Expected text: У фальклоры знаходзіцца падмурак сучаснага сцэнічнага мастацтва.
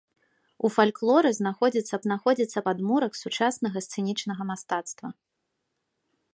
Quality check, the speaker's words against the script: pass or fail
fail